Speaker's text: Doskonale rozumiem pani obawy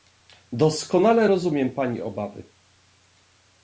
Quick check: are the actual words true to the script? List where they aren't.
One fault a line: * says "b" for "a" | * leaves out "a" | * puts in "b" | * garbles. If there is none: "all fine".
all fine